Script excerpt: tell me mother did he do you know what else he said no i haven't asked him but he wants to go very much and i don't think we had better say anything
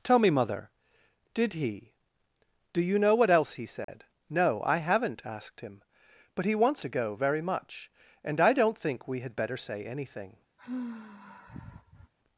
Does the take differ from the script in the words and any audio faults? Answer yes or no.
yes